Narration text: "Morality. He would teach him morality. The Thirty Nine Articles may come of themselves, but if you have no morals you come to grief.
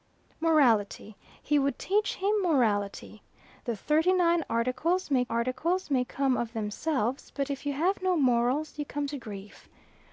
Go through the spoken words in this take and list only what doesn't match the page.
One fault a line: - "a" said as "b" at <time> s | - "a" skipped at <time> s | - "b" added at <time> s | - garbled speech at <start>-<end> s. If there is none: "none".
- "Articles may" added at 5.3 s